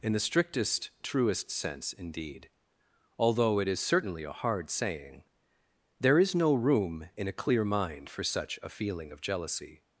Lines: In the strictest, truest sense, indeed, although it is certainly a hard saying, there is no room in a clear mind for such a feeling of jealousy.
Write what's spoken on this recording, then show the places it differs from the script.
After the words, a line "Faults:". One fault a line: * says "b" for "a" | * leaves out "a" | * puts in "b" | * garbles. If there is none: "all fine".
In the strictest, truest sense, indeed, although it is certainly a hard saying, there is no room in a clear mind for such a feeling of jealousy.
Faults:
all fine